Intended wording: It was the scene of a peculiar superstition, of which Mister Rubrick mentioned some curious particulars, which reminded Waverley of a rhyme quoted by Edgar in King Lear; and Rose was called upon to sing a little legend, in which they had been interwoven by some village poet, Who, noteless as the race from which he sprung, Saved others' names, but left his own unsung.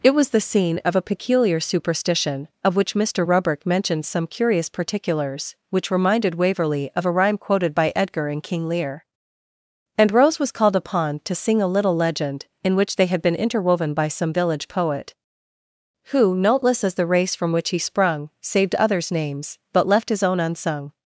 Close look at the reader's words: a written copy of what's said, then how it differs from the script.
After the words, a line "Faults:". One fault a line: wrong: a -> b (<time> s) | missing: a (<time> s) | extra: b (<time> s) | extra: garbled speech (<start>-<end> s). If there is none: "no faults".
It was the scene of a peculiar superstition, of which Mister Rubrick mentioned some curious particulars, which reminded Waverley of a rhyme quoted by Edgar in King Lear; and Rose was called upon to sing a little legend, in which they had been interwoven by some village poet, Who, noteless as the race from which he sprung, Saved others' names, but left his own unsung.
Faults:
no faults